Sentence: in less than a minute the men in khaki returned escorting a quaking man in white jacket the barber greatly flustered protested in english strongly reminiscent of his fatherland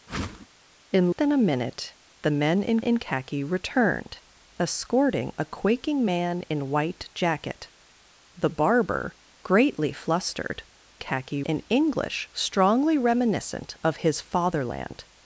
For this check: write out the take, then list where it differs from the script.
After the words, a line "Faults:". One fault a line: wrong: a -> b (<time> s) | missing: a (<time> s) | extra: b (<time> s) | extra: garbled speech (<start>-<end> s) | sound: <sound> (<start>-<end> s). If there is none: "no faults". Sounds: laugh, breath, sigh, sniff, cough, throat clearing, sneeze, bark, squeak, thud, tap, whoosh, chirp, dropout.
in than a minute the men in in khaki returned escorting a quaking man in white jacket the barber greatly flustered khaki in english strongly reminiscent of his fatherland
Faults:
sound: whoosh (0.1-0.5 s)
missing: less (1.1 s)
extra: in (2.8 s)
wrong: protested -> khaki (11.0 s)